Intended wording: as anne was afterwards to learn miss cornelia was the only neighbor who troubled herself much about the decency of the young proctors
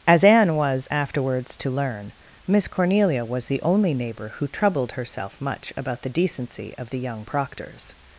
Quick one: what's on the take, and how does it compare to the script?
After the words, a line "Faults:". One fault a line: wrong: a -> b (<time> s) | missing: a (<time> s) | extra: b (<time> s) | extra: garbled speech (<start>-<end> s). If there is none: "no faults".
as anne was afterwards to learn miss cornelia was the only neighbor who troubled herself much about the decency of the young proctors
Faults:
no faults